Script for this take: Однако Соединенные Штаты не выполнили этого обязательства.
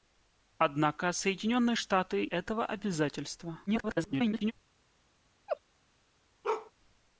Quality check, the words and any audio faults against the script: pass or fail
fail